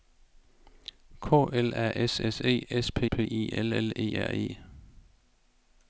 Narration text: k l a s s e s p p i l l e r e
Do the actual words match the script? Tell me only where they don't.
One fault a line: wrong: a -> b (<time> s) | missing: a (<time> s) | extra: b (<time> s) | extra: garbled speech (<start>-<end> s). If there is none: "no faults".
no faults